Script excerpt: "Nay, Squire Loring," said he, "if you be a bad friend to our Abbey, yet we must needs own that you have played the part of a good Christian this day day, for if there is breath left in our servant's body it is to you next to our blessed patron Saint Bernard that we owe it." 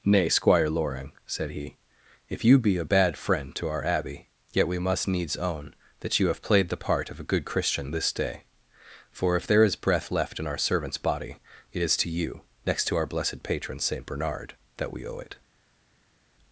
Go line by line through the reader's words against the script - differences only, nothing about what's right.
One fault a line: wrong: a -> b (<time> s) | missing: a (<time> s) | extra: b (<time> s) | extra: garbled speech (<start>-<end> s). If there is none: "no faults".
missing: day (8.4 s)